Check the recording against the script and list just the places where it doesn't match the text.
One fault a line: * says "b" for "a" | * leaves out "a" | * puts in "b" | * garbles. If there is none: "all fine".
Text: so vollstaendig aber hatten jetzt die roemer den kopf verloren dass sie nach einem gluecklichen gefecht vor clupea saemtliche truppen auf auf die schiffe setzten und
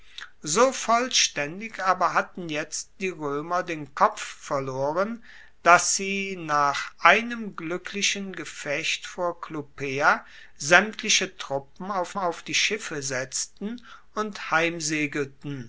all fine